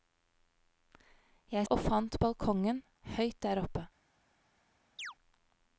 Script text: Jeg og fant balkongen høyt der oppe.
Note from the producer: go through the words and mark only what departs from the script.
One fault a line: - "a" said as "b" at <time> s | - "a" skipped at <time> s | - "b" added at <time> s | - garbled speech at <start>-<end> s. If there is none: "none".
none